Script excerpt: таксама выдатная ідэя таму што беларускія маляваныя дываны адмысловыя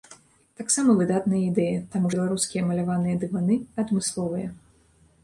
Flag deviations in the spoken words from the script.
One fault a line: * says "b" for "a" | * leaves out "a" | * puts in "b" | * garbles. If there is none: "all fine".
* leaves out "што"